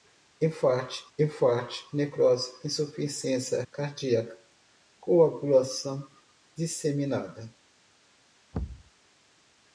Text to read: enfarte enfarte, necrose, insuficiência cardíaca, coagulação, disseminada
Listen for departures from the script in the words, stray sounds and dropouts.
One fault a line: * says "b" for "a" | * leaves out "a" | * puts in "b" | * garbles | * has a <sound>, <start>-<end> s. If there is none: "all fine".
* has a thud, 8.5-8.9 s